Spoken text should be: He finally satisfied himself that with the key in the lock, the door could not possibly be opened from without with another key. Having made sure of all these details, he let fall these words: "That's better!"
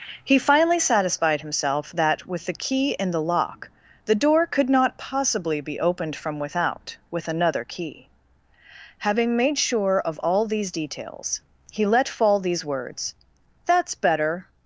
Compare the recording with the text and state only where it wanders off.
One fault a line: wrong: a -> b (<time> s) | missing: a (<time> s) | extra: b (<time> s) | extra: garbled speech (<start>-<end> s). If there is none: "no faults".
no faults